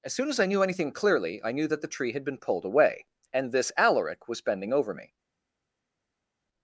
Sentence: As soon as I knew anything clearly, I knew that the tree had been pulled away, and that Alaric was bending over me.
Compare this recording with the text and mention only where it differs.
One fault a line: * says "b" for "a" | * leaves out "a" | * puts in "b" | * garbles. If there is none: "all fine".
* says "this" for "that"